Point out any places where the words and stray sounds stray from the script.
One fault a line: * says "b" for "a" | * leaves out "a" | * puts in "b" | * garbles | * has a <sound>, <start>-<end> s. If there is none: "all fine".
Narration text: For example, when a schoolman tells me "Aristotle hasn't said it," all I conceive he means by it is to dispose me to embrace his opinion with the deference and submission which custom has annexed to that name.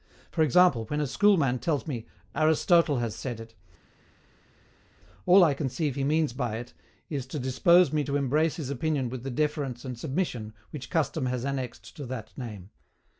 * says "has" for "hasn't"